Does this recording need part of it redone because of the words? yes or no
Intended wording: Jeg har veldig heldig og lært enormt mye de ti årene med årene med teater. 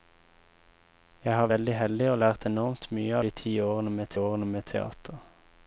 no